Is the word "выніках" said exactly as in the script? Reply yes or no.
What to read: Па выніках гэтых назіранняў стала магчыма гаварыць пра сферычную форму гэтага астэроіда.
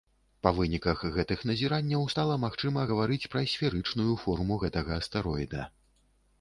yes